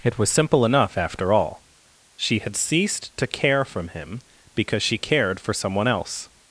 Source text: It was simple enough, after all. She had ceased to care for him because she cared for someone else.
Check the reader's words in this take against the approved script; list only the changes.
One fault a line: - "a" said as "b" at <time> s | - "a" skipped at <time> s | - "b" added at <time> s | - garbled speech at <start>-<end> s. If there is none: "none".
- "for" said as "from" at 3.6 s